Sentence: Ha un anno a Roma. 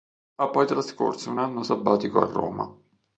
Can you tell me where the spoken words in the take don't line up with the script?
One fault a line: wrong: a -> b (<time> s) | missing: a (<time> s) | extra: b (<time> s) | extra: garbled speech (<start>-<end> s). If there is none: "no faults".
extra: poi trascorso (0.5 s)
extra: sabbatico (1.6 s)